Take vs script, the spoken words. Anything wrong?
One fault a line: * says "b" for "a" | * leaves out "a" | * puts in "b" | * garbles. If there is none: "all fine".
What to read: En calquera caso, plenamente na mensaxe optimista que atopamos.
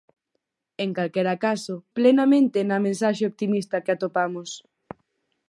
all fine